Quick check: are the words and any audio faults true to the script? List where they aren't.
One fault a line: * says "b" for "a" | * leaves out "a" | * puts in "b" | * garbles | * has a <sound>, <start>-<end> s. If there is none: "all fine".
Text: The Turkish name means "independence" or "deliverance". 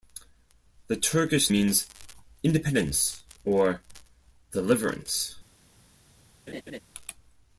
* leaves out "name"
* has a laugh, 6.5-6.8 s